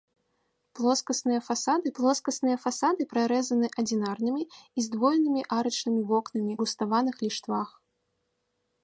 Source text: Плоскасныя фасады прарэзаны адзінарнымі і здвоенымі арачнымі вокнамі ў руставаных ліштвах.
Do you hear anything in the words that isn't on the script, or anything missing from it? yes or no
yes